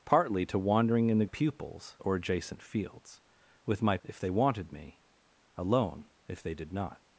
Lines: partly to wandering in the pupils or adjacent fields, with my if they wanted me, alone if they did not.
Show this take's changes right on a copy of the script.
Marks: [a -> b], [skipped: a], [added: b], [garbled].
partly to wandering in the pupils or adjacent fields, with my if they wanted me, alone if they did not.